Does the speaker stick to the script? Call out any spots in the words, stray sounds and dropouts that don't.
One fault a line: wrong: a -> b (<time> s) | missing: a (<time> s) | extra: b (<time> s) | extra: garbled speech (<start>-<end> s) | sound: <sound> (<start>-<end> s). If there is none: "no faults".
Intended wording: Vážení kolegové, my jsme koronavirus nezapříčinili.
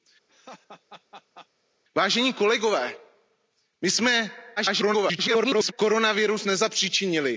sound: laugh (0.3-1.5 s)
extra: garbled speech (4.6-5.7 s)